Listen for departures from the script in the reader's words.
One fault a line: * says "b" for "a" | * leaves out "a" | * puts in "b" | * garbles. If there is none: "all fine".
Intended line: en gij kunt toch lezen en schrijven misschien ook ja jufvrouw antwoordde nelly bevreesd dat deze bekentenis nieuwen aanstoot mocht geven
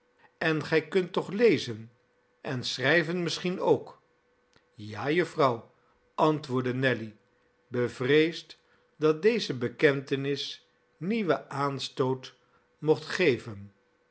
all fine